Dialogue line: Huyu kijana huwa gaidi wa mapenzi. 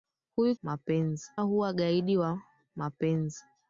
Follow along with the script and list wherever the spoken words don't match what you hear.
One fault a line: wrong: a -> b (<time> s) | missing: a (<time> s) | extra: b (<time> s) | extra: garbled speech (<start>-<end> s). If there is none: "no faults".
wrong: kijana -> mapenzi (0.6 s)